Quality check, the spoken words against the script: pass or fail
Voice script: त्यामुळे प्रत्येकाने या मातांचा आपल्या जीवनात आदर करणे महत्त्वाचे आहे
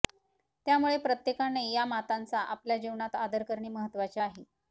pass